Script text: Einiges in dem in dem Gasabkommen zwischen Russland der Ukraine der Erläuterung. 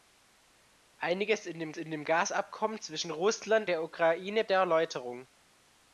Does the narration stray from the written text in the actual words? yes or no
no